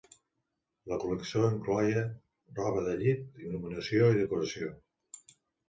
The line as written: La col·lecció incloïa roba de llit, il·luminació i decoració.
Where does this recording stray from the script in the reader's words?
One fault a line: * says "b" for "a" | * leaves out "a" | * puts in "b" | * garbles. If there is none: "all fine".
all fine